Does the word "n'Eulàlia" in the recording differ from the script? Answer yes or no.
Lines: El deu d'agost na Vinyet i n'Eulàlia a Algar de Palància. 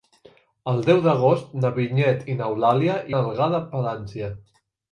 no